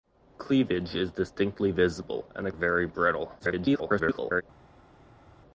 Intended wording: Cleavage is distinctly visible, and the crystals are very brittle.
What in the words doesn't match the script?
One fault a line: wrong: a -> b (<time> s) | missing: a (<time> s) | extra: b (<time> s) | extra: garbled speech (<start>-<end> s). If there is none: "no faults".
missing: crystals are (2.5 s)
extra: garbled speech (3.4-4.4 s)